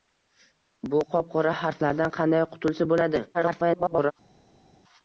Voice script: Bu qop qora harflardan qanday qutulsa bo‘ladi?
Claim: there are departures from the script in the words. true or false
true